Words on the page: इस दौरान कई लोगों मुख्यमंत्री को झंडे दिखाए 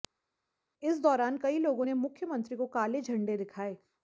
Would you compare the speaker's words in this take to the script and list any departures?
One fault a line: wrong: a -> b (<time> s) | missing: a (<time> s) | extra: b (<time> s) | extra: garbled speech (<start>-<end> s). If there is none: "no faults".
extra: ने (1.8 s)
extra: काले (2.7 s)